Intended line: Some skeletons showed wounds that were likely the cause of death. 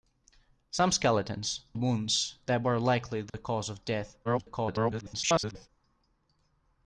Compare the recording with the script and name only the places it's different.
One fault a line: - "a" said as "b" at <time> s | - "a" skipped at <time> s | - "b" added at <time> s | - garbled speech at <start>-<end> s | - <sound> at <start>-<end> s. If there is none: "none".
- "showed" skipped at 1.6 s
- dropout at 3.3-3.3 s
- garbled speech at 4.2-5.7 s